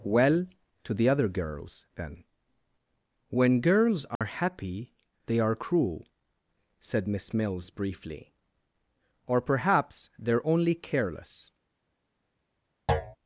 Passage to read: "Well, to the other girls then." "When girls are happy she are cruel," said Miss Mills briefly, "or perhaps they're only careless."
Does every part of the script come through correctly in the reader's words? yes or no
no